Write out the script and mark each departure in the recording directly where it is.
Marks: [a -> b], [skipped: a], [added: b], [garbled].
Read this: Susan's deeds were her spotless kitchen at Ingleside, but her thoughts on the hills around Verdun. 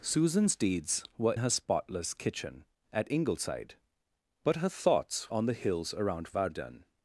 Susan's deeds were her spotless kitchen at Ingleside, but her thoughts on the hills around Verdun.